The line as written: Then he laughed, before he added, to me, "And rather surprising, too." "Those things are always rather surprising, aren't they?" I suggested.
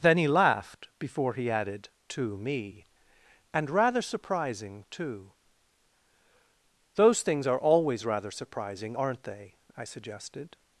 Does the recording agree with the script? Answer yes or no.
yes